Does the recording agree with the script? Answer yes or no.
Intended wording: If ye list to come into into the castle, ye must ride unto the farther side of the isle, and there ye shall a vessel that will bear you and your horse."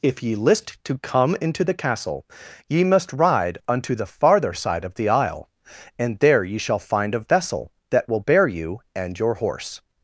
no